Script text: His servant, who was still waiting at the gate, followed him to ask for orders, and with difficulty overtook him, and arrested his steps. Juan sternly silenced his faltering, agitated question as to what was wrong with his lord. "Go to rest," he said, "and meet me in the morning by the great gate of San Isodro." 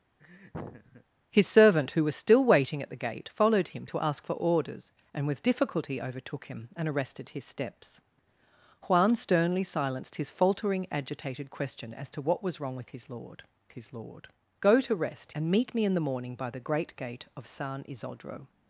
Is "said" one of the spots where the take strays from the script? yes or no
yes